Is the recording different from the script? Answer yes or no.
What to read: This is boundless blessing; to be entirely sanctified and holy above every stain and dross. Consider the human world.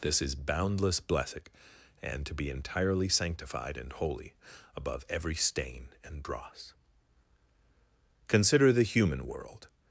yes